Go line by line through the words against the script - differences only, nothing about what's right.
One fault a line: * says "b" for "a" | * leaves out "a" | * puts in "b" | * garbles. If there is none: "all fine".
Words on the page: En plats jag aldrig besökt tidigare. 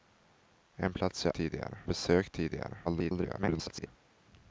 * says "tidigare" for "aldrig"
* garbles